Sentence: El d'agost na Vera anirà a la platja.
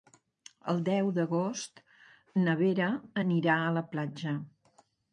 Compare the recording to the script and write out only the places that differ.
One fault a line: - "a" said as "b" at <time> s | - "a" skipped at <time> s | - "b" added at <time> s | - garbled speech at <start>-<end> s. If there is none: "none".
- "deu" added at 0.9 s